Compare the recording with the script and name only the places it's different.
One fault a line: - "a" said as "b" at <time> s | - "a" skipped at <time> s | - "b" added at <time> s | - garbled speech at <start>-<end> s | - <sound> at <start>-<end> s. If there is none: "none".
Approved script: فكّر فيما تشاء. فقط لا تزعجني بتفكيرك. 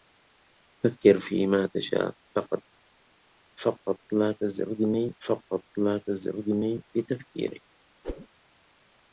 - "فقط لا تزعجني" added at 5.3 s
- whoosh at 8.0-8.3 s